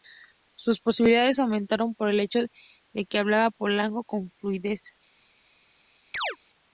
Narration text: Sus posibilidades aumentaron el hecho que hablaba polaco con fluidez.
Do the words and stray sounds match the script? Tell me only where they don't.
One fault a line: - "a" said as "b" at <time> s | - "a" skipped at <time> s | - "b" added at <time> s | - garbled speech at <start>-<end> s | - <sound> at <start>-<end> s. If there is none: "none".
- "por" added at 1.9 s
- "de" added at 2.9 s
- chirp at 6.1-6.4 s